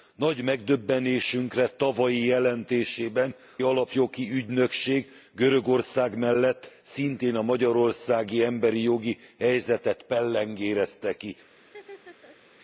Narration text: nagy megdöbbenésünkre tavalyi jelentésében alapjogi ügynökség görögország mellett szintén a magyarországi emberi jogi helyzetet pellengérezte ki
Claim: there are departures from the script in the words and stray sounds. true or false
true